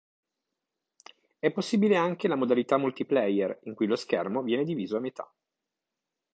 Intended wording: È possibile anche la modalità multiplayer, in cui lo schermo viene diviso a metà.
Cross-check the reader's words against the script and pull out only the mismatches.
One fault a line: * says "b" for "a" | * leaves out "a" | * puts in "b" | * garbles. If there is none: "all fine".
all fine